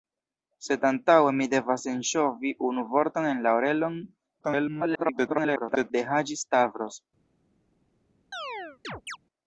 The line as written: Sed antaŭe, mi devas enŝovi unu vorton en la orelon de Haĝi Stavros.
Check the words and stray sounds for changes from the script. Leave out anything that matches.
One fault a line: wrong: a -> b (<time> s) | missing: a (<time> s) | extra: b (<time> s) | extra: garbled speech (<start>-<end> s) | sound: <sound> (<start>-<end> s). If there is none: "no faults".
extra: garbled speech (4.4-5.9 s)
sound: chirp (8.3-9.2 s)